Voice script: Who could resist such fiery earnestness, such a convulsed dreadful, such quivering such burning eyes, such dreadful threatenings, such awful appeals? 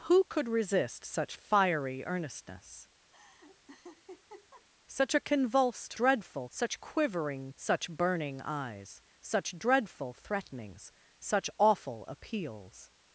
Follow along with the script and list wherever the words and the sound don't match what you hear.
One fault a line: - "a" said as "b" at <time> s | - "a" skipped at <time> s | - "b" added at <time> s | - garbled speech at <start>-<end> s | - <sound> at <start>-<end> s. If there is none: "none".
- laugh at 3.1-4.7 s